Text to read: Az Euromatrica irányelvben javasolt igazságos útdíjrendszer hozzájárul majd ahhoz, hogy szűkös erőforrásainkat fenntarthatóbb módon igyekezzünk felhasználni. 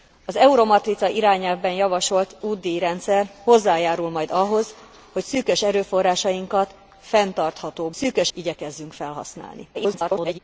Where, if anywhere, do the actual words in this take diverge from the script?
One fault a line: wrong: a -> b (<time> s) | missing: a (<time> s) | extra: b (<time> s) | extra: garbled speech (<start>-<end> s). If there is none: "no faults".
missing: igazságos (2.4 s)
wrong: módon -> szűkös (7.9 s)
extra: garbled speech (9.7-10.4 s)